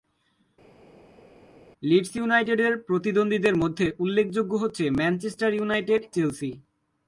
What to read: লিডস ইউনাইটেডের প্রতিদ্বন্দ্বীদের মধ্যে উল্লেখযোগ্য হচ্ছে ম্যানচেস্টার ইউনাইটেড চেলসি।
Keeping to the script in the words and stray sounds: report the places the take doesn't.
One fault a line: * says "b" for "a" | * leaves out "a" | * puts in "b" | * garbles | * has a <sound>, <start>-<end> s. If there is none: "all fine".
all fine